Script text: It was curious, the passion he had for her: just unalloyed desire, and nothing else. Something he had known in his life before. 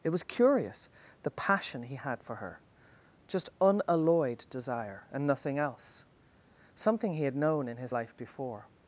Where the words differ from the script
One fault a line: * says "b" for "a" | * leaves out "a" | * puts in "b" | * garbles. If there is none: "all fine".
all fine